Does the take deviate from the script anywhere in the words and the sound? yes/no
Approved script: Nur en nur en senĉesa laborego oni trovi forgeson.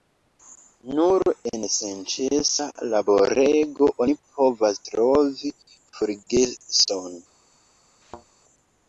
yes